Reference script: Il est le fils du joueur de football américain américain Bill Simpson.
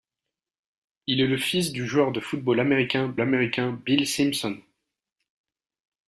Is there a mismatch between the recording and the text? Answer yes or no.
no